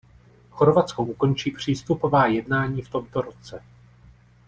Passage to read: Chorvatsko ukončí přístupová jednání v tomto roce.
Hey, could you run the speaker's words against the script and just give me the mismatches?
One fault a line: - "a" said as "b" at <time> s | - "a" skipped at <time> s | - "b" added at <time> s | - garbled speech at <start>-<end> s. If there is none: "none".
none